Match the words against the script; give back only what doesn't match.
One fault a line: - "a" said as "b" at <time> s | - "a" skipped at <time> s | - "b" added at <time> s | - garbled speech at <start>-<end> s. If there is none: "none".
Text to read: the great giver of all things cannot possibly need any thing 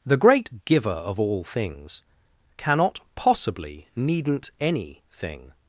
- "need" said as "needn't" at 3.9 s